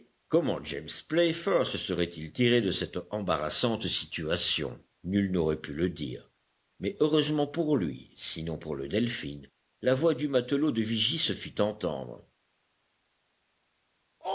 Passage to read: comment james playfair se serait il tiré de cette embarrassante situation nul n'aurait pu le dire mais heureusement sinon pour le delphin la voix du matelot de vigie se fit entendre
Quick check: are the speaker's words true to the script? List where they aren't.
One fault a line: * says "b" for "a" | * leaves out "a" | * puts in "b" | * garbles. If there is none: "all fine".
* puts in "pour lui"